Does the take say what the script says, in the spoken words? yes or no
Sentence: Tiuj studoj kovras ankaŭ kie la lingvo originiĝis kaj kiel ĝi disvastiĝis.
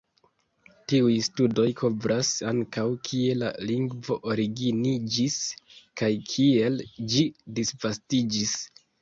yes